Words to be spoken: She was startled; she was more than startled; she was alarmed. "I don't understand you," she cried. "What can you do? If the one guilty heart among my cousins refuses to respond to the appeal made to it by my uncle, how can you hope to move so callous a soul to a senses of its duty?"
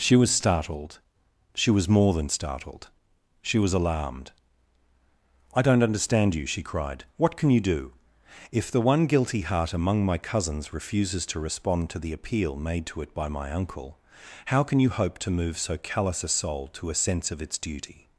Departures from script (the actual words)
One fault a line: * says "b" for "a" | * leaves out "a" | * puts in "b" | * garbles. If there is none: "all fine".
* says "sense" for "senses"